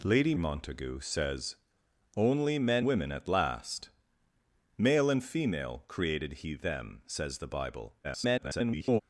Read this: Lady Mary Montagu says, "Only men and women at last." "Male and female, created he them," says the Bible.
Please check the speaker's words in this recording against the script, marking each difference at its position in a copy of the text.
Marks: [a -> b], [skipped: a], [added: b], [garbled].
Lady [skipped: Mary] Montagu says, "Only men [skipped: and] women at last." "Male and female, created he them," says the Bible. [garbled]